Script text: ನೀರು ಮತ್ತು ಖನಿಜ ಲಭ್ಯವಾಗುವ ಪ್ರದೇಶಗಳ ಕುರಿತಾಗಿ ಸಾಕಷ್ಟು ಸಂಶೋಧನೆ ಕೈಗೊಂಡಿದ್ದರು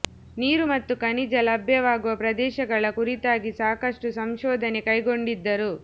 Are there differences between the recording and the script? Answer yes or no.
no